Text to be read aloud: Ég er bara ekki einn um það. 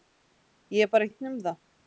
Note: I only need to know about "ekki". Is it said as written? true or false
false